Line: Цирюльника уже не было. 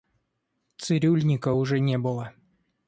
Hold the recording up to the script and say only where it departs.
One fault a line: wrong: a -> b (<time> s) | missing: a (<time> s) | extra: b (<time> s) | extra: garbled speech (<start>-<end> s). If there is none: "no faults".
no faults